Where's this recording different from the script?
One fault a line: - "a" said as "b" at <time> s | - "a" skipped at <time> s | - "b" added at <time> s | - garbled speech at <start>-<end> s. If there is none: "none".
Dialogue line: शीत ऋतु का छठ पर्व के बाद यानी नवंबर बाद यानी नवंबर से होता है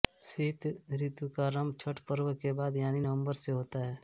- "आरंभ" added at 1.4 s
- "बाद यानी नवंबर" skipped at 3.3 s